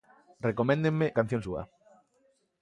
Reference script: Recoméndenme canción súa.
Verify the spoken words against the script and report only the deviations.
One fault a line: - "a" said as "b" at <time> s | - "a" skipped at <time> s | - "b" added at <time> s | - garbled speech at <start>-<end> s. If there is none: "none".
none